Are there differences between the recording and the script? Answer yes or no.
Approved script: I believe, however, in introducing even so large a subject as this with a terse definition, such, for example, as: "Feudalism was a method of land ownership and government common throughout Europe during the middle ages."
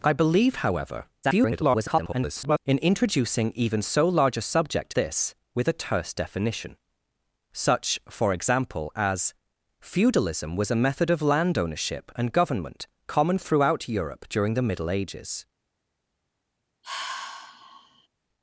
yes